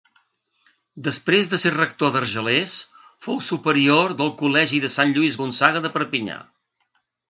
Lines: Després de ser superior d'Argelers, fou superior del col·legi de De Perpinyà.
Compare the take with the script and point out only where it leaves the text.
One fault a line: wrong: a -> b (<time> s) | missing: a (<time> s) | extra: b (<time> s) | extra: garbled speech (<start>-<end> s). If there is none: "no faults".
wrong: superior -> rector (1.7 s)
extra: Sant Lluís Gonçaga (5.0 s)